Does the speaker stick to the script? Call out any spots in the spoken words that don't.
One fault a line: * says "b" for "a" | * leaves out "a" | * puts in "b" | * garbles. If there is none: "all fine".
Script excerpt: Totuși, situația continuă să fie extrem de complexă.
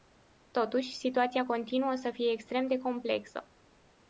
all fine